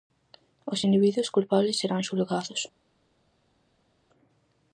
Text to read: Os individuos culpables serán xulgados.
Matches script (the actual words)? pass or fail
pass